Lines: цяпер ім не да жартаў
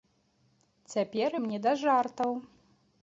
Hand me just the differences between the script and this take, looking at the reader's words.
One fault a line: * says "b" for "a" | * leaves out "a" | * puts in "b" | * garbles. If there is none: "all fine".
all fine